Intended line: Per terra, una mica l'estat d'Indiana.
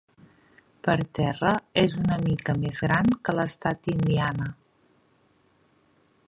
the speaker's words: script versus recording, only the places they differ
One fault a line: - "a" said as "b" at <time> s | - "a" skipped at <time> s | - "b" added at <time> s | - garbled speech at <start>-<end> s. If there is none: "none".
- "és" added at 1.8 s
- "més gran que" added at 2.6 s